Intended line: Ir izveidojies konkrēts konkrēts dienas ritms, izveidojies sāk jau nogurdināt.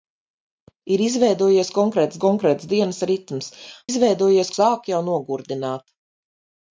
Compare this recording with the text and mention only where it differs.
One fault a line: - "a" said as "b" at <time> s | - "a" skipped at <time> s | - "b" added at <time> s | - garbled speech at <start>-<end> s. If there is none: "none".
none